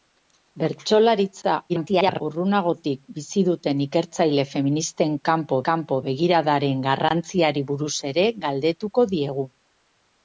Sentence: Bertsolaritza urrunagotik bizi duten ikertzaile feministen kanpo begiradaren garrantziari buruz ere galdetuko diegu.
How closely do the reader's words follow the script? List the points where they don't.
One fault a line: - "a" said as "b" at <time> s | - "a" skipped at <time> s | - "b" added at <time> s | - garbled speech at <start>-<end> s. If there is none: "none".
- garbled speech at 1.7-2.2 s
- "kanpo" added at 5.7 s